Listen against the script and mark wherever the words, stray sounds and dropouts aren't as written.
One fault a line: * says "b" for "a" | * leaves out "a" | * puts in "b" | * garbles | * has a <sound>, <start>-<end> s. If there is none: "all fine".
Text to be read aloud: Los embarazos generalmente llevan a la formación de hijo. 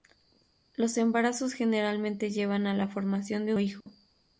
* has a dropout, 3.8-3.9 s